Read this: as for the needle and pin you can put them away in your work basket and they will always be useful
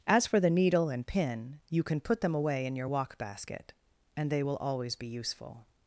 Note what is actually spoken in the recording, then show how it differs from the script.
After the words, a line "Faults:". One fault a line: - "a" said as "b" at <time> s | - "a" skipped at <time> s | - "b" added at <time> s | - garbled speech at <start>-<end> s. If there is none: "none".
as for the needle and pin you can put them away in your walk basket and they will always be useful
Faults:
- "work" said as "walk" at 2.9 s